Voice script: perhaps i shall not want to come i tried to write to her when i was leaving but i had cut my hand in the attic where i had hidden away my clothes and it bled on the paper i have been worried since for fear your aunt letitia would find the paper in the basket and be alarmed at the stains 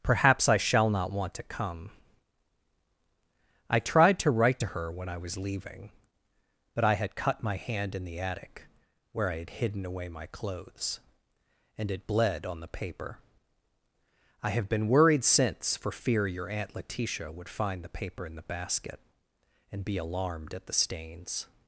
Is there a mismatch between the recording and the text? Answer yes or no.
no